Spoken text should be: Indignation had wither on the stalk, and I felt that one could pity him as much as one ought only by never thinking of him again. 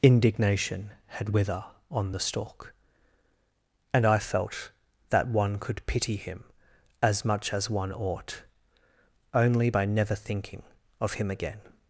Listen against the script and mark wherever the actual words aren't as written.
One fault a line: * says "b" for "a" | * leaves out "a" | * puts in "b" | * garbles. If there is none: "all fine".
all fine